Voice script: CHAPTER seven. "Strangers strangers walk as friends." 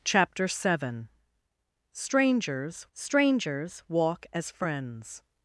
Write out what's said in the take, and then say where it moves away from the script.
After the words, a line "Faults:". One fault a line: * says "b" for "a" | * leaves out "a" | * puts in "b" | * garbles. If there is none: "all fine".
CHAPTER seven. "Strangers strangers walk as friends."
Faults:
all fine